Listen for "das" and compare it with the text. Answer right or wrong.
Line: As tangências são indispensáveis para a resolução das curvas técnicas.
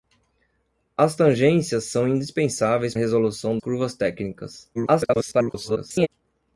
wrong